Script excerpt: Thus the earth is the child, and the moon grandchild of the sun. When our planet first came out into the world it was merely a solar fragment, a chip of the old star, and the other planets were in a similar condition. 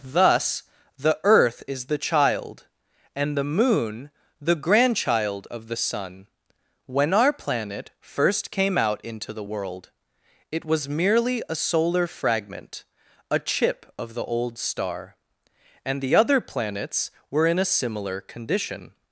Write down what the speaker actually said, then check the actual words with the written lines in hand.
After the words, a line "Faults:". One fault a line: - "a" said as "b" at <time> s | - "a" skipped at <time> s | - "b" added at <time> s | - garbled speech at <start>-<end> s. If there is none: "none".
Thus the earth is the child, and the moon the grandchild of the sun. When our planet first came out into the world it was merely a solar fragment, a chip of the old star, and the other planets were in a similar condition.
Faults:
- "the" added at 4.4 s